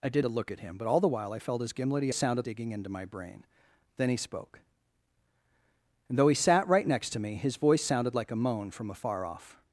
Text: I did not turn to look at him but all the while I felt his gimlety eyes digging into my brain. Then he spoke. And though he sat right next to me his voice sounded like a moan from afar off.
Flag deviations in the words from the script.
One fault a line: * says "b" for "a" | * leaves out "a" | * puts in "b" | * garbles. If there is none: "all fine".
* leaves out "not turn"
* says "sounded" for "eyes"